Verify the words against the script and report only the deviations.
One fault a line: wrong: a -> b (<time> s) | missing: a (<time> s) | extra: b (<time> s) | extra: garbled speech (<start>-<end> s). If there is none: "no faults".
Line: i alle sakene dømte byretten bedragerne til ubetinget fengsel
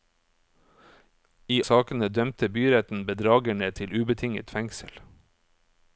missing: alle (1.6 s)